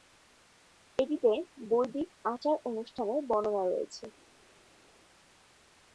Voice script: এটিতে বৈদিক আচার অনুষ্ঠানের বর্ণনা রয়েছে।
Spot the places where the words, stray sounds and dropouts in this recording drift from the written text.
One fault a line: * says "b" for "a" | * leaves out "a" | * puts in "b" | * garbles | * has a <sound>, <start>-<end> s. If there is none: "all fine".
all fine